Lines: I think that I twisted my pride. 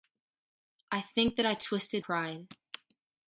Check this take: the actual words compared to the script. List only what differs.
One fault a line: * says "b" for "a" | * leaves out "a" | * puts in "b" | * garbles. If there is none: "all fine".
* leaves out "my"